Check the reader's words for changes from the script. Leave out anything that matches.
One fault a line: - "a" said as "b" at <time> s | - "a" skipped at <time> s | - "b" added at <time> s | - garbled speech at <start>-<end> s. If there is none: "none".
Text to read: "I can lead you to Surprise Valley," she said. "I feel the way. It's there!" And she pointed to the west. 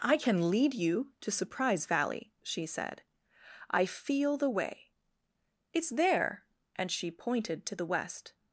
none